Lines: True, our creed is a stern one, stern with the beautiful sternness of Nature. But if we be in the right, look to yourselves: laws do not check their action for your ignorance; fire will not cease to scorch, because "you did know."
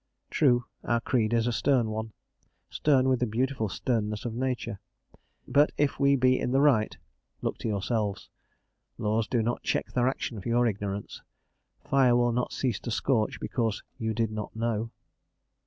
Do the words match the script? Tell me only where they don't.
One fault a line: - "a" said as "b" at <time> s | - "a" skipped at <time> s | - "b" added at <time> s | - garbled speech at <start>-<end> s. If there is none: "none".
- "not" added at 14.3 s